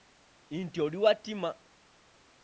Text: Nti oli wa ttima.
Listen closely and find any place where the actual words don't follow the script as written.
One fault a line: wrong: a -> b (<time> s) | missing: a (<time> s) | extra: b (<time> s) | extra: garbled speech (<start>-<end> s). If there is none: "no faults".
no faults